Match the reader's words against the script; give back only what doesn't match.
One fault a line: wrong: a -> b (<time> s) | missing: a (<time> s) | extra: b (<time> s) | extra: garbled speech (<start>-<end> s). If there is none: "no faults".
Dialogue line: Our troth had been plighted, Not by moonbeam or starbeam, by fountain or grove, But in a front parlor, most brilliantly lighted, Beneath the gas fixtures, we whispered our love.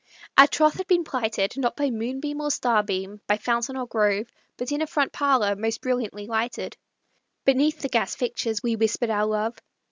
no faults